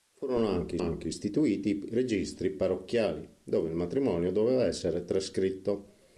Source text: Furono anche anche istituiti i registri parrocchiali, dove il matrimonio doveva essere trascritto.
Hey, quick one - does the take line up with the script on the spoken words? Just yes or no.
yes